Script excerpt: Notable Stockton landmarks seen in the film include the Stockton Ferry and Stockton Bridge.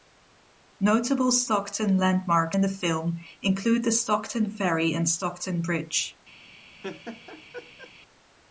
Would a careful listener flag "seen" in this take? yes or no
yes